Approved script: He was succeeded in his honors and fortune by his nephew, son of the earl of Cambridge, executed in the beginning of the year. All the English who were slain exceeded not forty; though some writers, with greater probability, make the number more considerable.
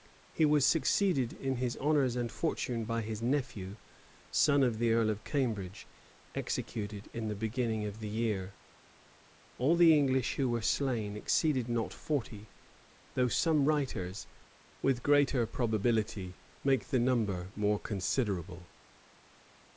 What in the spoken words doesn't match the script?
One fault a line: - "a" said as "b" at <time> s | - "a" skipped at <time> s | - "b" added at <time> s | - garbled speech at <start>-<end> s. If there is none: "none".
none